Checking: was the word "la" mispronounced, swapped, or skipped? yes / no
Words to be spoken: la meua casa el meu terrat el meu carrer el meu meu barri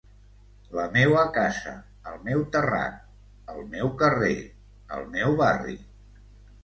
no